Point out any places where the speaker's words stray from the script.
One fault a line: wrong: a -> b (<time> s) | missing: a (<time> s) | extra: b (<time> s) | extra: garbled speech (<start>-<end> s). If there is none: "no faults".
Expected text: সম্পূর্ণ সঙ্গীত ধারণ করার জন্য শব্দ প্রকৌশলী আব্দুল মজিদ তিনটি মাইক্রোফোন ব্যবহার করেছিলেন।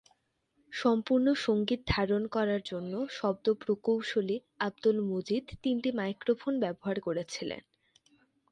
no faults